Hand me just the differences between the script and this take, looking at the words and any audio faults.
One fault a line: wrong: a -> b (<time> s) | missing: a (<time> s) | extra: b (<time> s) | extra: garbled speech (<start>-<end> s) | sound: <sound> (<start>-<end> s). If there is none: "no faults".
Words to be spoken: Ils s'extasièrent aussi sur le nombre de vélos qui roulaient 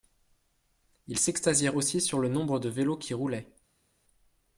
no faults